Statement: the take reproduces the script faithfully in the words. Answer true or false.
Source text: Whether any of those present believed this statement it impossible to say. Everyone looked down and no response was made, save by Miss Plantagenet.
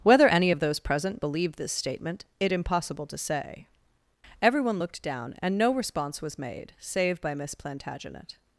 true